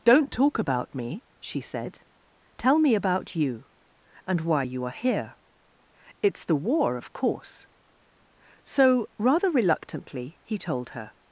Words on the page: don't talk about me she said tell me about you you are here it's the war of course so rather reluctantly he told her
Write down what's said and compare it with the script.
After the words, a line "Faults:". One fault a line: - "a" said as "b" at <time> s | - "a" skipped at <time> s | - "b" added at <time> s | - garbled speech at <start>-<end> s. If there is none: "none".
don't talk about me she said tell me about you and why you are here it's the war of course so rather reluctantly he told her
Faults:
- "and why" added at 4.2 s